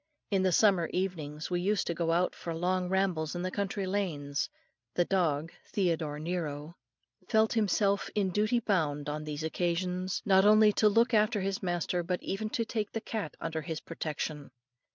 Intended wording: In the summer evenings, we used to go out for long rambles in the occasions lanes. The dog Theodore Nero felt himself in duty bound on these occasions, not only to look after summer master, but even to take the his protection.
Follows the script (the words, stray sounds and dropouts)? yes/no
no